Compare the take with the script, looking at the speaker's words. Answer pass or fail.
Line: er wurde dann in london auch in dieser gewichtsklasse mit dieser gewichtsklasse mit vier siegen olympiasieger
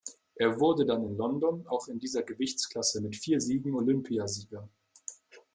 fail